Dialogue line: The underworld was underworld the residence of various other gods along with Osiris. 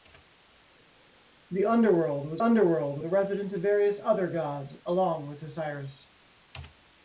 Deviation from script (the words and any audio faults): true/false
false